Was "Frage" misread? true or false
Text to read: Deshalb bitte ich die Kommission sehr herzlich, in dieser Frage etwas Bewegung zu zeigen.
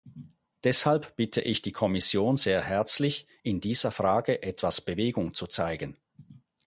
false